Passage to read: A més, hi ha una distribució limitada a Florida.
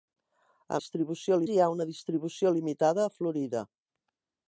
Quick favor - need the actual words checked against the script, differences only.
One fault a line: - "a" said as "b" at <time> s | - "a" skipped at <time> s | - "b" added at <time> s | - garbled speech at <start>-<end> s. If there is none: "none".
- "més" said as "distribució" at 0.8 s